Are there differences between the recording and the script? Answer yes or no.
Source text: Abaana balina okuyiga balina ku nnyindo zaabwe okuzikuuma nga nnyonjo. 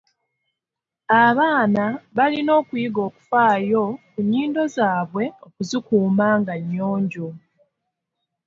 yes